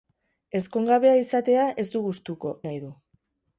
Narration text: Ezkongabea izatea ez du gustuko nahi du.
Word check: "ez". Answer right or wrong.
right